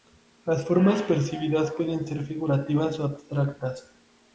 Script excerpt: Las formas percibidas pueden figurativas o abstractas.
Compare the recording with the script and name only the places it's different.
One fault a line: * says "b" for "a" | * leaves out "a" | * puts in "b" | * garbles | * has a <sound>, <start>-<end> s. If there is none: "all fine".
* puts in "ser"